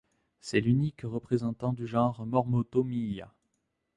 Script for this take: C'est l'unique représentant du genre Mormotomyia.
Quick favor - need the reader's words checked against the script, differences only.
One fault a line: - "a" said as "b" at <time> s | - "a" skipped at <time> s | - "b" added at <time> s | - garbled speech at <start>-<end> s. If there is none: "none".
none